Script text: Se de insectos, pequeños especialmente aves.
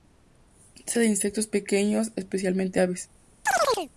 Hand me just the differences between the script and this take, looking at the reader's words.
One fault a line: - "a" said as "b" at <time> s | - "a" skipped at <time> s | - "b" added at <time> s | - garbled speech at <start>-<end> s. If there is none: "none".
none